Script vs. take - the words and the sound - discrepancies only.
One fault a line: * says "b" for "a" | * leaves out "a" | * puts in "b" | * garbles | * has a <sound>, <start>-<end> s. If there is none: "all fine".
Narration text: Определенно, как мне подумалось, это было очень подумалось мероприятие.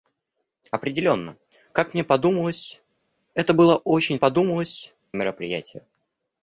all fine